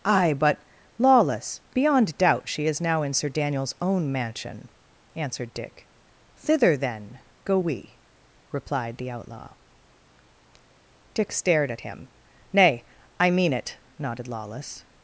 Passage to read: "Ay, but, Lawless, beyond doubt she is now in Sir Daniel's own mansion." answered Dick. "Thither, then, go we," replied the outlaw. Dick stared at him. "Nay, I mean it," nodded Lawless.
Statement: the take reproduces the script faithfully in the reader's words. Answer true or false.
true